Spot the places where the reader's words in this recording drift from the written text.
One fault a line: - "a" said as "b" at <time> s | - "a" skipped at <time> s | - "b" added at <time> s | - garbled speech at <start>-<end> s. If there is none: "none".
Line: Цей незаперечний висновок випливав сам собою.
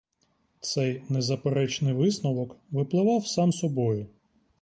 none